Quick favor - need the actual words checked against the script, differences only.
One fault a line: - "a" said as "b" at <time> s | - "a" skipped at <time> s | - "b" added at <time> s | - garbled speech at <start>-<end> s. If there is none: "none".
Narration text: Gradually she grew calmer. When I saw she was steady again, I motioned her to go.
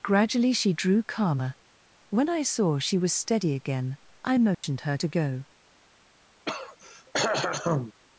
- "grew" said as "drew" at 0.7 s